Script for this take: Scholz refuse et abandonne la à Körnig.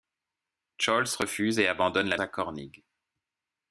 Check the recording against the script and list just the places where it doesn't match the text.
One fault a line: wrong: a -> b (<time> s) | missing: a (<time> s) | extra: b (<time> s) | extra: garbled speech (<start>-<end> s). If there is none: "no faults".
no faults